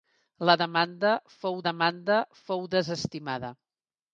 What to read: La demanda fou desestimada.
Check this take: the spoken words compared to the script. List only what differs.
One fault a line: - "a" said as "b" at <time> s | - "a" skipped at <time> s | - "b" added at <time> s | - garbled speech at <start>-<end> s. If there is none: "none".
- "demanda fou" added at 1.7 s